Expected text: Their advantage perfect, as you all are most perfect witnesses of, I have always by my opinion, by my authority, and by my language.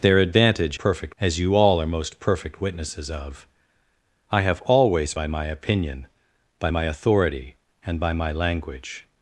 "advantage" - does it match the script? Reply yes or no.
yes